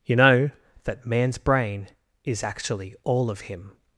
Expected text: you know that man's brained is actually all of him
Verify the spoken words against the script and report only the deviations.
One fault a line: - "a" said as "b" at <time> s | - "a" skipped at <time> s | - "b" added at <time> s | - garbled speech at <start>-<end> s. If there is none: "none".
- "brained" said as "brain" at 1.4 s